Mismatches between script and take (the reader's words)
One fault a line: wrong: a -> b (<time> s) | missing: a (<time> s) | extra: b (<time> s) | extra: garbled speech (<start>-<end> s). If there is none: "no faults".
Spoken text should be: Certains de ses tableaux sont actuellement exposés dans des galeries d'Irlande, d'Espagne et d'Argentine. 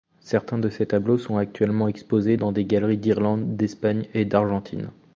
no faults